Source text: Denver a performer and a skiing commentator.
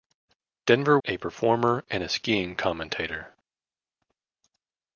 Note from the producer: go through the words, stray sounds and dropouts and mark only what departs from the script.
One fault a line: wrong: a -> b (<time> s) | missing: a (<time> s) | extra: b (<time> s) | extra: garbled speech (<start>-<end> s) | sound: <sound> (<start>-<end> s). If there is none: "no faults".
no faults